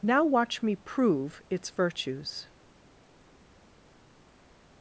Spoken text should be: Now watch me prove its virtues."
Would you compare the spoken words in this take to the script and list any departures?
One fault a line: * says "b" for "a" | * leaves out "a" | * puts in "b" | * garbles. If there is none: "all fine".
all fine